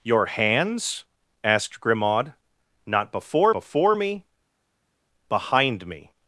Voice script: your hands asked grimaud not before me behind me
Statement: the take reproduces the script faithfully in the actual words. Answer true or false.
false